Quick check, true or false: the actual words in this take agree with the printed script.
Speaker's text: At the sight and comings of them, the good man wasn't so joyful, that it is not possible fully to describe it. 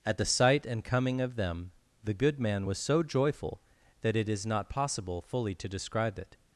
false